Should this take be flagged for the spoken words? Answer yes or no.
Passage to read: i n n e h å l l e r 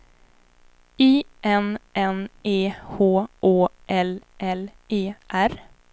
no